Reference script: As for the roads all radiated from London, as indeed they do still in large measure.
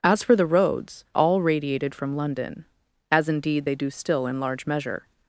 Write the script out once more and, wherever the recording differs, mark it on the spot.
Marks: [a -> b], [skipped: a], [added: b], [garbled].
As for the roads all radiated from London, as indeed they do still in large measure.